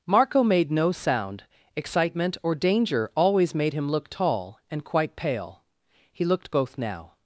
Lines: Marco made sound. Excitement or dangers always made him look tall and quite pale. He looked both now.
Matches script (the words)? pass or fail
fail